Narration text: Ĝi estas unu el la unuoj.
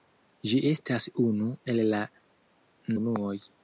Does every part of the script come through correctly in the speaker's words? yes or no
yes